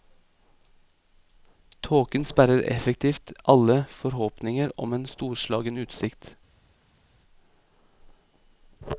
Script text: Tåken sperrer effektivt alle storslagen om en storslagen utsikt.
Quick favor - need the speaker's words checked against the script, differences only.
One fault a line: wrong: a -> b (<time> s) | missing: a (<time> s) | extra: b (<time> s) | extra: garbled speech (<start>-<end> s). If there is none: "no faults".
wrong: storslagen -> forhåpninger (3.9 s)